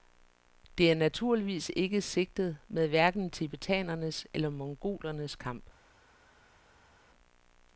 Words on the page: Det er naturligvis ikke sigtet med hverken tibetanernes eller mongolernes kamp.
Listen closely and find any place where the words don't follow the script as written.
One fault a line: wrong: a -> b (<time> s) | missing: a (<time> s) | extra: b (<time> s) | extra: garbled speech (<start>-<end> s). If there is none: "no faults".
no faults